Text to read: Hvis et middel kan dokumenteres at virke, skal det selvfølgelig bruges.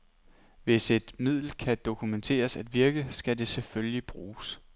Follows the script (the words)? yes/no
yes